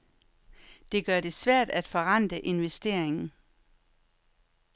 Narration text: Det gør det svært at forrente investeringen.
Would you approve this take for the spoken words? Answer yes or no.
yes